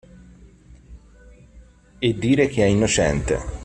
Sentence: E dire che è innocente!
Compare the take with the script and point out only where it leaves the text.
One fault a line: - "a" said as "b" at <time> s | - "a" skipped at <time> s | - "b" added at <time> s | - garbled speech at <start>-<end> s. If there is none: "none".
none